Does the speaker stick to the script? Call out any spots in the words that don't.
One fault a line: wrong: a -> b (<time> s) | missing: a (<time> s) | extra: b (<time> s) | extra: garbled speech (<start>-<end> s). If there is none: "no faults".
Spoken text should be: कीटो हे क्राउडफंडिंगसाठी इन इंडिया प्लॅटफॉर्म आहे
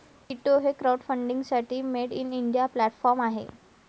extra: मेड (1.9 s)